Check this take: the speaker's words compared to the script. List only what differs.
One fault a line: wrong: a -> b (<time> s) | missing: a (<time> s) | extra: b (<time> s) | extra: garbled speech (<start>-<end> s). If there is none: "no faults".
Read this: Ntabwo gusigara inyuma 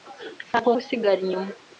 no faults